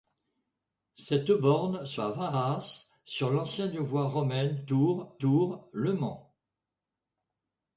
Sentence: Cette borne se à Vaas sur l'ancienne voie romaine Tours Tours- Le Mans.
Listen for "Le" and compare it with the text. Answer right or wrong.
right